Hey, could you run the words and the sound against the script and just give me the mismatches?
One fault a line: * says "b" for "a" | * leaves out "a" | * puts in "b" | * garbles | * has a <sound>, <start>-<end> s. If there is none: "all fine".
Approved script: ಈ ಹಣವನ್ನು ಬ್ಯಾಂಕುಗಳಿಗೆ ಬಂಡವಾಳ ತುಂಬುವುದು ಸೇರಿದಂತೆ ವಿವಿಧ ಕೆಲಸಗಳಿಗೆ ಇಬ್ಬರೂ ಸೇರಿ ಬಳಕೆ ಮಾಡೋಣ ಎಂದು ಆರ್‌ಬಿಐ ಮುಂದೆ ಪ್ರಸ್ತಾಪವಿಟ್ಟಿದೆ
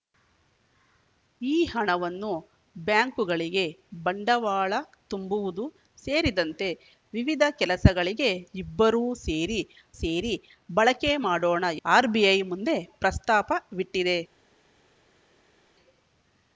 * puts in "ಸೇರಿ"
* leaves out "ಎಂದು"